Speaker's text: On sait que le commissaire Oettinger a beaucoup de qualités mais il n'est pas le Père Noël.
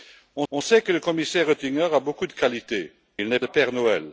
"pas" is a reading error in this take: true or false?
true